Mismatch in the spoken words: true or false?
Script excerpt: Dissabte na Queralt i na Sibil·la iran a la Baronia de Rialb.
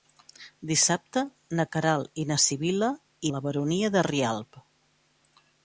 true